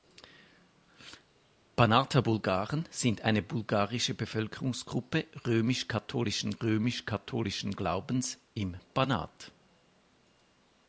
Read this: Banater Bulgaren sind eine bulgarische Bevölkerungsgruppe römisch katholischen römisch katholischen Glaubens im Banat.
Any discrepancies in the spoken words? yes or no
no